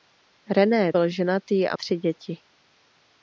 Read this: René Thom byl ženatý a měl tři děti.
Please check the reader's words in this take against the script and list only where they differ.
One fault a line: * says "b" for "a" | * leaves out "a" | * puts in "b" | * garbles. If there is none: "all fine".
* leaves out "Thom"
* leaves out "měl"